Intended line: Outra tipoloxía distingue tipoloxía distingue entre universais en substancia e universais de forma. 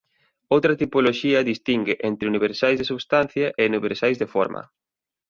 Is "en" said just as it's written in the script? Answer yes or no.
no